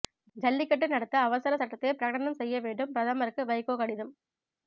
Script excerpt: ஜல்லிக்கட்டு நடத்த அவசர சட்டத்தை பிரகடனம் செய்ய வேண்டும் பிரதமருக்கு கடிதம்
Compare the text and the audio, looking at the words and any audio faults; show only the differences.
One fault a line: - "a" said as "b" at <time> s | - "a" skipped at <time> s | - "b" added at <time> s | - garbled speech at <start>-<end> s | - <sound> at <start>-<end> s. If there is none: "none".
- "வைகோ" added at 3.4 s